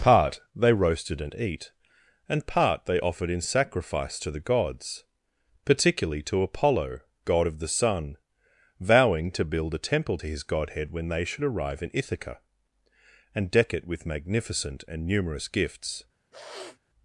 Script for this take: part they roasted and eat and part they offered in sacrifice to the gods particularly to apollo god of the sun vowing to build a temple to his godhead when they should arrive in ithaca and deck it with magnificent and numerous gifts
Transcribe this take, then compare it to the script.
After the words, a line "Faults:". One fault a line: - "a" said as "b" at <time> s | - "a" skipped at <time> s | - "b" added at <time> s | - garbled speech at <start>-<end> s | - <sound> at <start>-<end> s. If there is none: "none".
part they roasted and eat and part they offered in sacrifice to the gods particularly to apollo god of the sun vowing to build a temple to his godhead when they should arrive in ithaca and deck it with magnificent and numerous gifts
Faults:
- sniff at 16.3-16.8 s